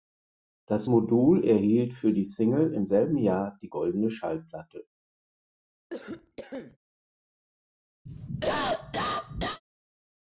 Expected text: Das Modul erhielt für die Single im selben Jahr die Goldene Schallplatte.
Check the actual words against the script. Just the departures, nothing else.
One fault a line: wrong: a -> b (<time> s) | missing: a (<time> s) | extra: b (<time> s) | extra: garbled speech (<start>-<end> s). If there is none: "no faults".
no faults